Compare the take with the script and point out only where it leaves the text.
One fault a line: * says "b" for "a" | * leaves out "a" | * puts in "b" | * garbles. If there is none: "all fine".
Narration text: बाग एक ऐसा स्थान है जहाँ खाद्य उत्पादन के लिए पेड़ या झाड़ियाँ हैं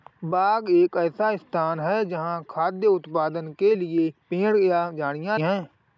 all fine